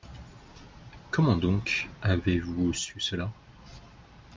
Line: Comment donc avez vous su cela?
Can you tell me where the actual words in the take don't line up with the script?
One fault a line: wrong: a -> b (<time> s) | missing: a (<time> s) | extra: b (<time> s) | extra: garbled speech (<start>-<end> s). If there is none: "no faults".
no faults